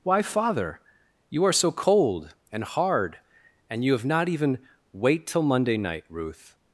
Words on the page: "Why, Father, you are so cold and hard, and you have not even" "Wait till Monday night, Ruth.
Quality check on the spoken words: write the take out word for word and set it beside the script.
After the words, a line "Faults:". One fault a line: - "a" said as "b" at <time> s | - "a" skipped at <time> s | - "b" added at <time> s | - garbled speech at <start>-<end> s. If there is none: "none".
"Why, Father, you are so cold and hard, and you have not even" "Wait till Monday night, Ruth.
Faults:
none